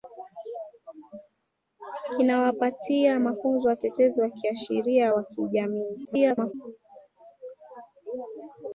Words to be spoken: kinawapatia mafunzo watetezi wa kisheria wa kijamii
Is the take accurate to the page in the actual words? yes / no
no